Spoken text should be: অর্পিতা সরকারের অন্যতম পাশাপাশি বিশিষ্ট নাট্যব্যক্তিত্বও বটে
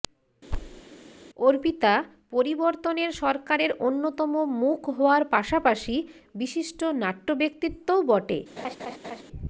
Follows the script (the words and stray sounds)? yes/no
no